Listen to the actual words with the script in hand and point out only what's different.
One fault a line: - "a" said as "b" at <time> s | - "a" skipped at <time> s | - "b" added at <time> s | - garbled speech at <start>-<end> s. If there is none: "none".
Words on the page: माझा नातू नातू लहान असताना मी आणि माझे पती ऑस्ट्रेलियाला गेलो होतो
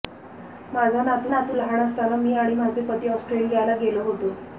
none